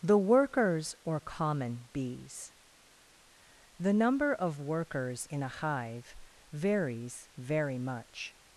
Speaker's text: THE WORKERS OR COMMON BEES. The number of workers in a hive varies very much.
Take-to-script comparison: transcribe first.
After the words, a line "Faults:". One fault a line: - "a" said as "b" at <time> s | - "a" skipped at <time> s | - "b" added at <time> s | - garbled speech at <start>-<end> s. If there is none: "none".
THE WORKERS OR COMMON BEES. The number of workers in a hive varies very much.
Faults:
none